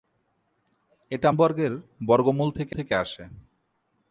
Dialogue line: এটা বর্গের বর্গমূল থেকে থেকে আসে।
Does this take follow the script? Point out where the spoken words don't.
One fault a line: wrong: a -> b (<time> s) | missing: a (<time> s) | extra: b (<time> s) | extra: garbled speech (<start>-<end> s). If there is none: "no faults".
no faults